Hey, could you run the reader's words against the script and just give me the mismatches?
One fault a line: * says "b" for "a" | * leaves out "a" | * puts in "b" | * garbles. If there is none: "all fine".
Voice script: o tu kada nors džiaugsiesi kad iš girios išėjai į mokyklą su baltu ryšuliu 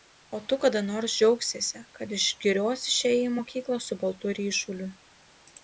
all fine